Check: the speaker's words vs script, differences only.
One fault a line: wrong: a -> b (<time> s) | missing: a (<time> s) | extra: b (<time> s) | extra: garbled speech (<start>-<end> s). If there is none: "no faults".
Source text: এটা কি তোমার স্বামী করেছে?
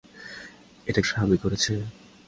missing: কি তোমার (1.0 s)